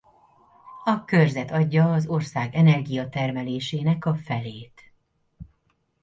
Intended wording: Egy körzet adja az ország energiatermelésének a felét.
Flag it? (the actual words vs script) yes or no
yes